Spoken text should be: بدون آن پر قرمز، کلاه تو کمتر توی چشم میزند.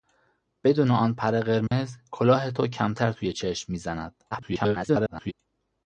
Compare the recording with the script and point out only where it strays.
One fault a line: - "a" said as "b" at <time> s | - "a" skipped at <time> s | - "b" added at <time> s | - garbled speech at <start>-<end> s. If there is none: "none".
- garbled speech at 4.3-5.3 s